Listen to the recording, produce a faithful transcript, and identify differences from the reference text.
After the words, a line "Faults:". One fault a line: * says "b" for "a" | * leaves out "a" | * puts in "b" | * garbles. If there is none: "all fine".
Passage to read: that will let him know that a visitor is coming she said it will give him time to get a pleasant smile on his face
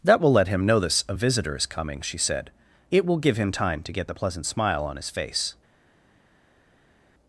that will let him know this a visitor is coming she said it will give him time to get the pleasant smile on his face
Faults:
* says "this" for "that"
* says "the" for "a"